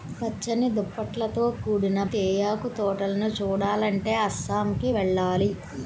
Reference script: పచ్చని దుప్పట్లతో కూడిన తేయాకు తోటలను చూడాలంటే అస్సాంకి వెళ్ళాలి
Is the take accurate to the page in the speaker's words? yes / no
yes